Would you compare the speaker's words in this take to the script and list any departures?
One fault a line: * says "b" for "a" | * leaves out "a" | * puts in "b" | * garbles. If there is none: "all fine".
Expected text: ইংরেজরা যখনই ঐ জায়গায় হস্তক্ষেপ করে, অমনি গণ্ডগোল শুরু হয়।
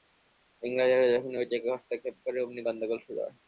all fine